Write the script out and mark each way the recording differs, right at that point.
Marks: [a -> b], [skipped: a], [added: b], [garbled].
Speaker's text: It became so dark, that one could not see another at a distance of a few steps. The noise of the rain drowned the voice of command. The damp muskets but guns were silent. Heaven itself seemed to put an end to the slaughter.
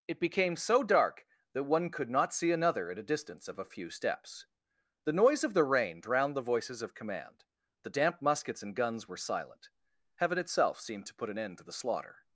It became so dark, that one could not see another at a distance of a few steps. The noise of the rain drowned the [voice -> voices] of command. The damp muskets [but -> and] guns were silent. Heaven itself seemed to put an end to the slaughter.